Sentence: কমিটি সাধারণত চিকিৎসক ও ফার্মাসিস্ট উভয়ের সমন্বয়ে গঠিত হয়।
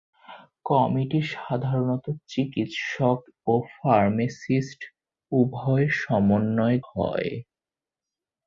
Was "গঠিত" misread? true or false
true